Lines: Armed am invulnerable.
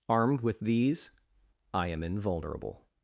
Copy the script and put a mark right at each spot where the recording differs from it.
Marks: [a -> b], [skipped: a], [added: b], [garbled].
Armed [added: with these I] am invulnerable.